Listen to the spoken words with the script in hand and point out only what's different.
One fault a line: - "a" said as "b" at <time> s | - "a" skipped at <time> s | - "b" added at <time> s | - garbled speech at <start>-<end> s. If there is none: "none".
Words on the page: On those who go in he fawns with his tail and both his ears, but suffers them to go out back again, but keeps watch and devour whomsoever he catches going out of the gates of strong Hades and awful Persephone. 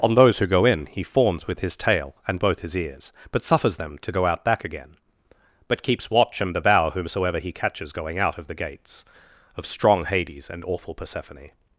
none